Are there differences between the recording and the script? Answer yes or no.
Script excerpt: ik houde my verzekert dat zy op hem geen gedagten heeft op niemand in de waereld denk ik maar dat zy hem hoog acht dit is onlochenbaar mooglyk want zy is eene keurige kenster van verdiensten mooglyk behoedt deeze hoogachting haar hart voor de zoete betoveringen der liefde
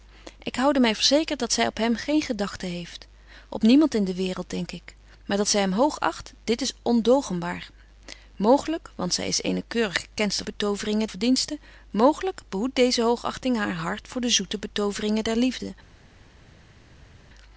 yes